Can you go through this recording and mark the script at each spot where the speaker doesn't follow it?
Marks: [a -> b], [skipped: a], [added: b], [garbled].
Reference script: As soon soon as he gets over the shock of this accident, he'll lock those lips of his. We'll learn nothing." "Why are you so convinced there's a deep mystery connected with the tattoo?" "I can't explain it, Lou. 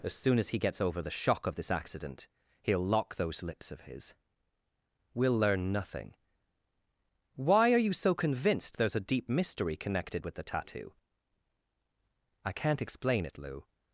As soon [skipped: soon] as he gets over the shock of this accident, he'll lock those lips of his. We'll learn nothing." "Why are you so convinced there's a deep mystery connected with the tattoo?" "I can't explain it, Lou.